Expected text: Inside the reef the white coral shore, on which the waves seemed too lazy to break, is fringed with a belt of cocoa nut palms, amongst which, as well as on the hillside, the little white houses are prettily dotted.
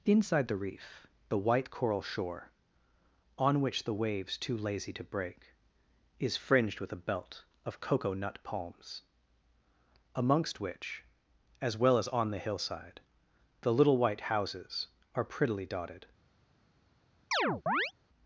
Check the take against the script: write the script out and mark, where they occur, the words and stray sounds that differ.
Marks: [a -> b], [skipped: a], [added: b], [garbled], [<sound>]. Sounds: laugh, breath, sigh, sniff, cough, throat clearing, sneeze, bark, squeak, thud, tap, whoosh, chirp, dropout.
Inside the reef the white coral shore, on which the waves [skipped: seemed] too lazy to break, is fringed with a belt of cocoa nut palms, amongst which, as well as on the hillside, the little white houses are prettily dotted. [chirp]